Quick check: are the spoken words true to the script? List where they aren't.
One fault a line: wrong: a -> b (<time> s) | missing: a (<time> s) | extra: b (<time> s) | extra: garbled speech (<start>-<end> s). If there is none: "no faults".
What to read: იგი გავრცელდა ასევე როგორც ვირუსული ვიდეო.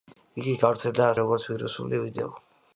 missing: ასევე (1.1 s)